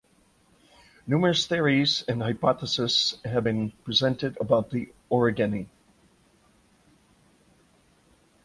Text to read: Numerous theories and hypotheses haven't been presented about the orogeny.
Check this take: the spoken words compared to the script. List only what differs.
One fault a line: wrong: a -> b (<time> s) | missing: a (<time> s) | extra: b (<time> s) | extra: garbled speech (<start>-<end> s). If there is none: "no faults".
wrong: haven't -> have (3.2 s)